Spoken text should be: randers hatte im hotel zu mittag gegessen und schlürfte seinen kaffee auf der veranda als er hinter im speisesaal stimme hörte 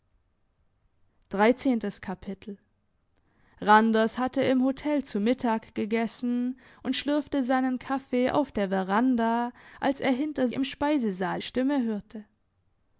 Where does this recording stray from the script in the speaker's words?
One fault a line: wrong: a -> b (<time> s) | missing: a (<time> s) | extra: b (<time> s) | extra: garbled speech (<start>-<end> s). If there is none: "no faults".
no faults